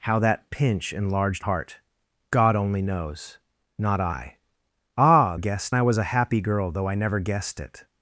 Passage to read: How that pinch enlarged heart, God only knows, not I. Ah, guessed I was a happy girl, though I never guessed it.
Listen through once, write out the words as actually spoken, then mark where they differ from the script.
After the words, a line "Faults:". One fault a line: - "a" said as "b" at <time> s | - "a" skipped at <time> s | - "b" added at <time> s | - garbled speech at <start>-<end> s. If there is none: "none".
How that pinch enlarged heart, God only knows, not I. Ah, guessed I was a happy girl, though I never guessed it.
Faults:
none